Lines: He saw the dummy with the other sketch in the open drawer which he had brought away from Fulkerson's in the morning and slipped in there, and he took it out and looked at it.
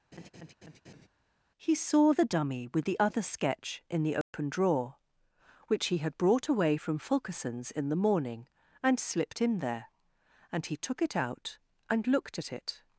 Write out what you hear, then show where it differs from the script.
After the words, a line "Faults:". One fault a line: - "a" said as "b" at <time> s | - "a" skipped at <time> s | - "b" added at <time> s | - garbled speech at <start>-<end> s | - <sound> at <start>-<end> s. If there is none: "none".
He saw the dummy with the other sketch in the open drawer which he had brought away from Fulkerson's in the morning and slipped in there, and he took it out and looked at it.
Faults:
- laugh at 0.1-1.1 s
- dropout at 4.2-4.3 s